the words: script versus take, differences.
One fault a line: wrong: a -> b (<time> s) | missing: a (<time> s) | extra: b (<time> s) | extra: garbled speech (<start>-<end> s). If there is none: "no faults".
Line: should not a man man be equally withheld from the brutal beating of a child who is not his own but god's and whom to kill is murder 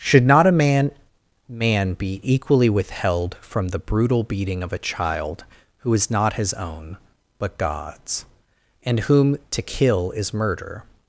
no faults